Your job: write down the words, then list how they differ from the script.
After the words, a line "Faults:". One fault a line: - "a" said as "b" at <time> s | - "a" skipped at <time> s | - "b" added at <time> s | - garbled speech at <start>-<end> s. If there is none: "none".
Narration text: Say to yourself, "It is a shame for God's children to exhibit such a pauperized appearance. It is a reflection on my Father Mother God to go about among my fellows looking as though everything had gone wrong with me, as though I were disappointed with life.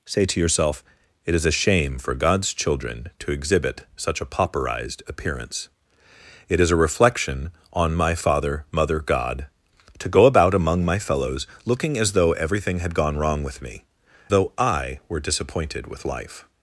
Say to yourself, "It is a shame for God's children to exhibit such a pauperized appearance. It is a reflection on my Father Mother God to go about among my fellows looking as though everything had gone wrong with me, though I were disappointed with life.
Faults:
- "as" skipped at 13.8 s